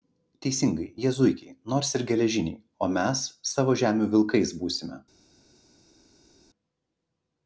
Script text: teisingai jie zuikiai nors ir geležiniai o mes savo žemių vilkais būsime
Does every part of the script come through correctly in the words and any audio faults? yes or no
yes